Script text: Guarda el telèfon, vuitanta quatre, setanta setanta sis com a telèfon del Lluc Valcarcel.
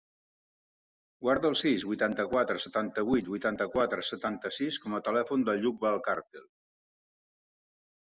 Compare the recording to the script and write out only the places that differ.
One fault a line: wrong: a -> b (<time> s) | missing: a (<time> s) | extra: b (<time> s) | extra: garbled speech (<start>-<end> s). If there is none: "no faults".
wrong: telèfon -> sis (1.6 s)
extra: vuit vuitanta quatre (3.1 s)